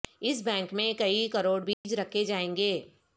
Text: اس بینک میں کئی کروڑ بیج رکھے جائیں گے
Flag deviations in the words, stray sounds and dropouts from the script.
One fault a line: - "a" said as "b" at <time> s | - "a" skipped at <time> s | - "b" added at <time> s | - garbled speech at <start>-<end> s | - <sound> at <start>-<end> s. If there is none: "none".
- dropout at 1.7-1.8 s